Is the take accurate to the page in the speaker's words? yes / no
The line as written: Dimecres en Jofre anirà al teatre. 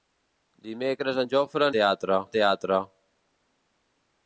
no